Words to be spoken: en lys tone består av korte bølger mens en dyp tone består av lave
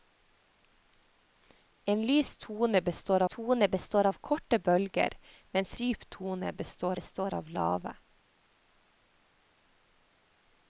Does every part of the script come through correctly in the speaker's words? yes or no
no